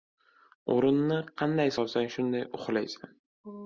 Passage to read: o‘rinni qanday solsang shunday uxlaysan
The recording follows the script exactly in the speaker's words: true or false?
true